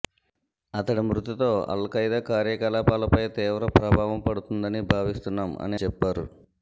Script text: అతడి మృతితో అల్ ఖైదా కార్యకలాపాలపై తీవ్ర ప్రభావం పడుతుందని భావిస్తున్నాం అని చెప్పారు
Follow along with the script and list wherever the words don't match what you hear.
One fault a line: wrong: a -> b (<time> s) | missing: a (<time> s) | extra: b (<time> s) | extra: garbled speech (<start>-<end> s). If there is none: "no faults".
no faults